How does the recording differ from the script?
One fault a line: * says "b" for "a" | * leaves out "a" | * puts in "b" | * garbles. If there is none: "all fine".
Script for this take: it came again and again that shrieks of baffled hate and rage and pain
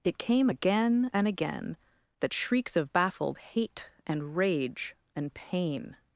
all fine